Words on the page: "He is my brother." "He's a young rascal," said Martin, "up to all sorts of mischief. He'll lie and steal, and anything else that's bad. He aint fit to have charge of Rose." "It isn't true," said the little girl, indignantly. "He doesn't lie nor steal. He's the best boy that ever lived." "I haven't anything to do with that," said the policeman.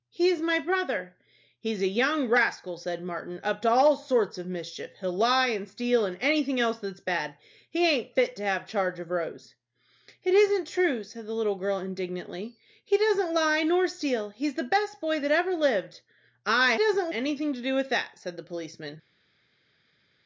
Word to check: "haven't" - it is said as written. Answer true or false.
false